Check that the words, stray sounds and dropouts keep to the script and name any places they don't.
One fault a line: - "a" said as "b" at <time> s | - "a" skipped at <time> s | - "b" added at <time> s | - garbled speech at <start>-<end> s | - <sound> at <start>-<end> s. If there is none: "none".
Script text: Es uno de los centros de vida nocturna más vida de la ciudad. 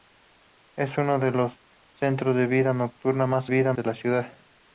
none